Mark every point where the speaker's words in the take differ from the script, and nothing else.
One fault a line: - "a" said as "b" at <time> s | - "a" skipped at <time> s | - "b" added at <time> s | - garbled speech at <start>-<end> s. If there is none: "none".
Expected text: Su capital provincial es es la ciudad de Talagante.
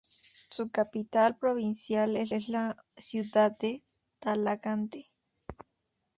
none